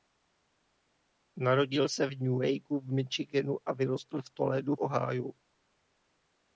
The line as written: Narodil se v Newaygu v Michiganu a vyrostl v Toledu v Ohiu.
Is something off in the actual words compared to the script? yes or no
yes